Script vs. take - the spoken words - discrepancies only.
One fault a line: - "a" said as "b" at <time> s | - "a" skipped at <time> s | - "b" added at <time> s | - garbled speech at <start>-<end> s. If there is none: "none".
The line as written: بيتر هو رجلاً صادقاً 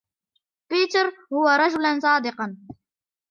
none